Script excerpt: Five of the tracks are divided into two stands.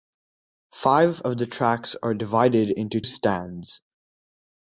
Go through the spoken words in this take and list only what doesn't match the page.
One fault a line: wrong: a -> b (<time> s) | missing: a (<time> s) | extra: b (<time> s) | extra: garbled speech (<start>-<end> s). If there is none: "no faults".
missing: two (3.0 s)